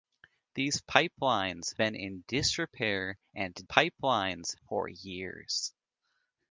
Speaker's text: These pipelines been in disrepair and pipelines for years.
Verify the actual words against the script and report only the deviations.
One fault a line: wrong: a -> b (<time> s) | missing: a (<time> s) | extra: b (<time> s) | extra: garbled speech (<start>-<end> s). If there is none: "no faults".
no faults